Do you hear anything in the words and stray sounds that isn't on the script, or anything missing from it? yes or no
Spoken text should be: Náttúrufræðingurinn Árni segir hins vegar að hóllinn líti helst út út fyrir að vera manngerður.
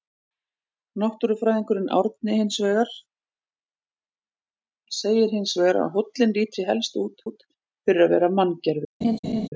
yes